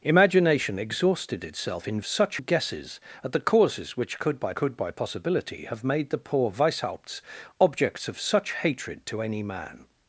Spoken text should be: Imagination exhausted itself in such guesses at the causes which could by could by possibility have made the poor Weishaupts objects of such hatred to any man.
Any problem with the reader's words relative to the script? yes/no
no